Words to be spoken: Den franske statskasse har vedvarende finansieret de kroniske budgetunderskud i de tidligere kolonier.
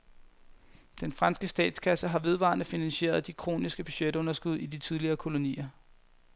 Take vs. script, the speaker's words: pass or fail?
pass